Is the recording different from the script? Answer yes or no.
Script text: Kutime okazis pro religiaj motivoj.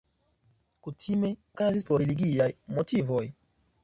no